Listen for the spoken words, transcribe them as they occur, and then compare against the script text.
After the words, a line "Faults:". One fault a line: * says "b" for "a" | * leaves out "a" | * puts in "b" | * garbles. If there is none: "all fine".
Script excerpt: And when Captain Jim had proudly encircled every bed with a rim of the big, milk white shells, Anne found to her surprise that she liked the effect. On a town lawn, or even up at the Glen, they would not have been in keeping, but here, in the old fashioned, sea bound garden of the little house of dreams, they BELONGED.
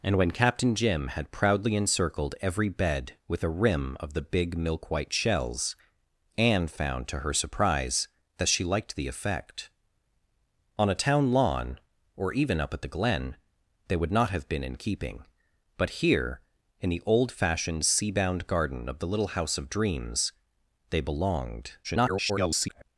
And when Captain Jim had proudly encircled every bed with a rim of the big, milk white shells, Anne found to her surprise that she liked the effect. On a town lawn, or even up at the Glen, they would not have been in keeping, but here, in the old fashioned, sea bound garden of the little house of dreams, they BELONGED. [garbled]
Faults:
* garbles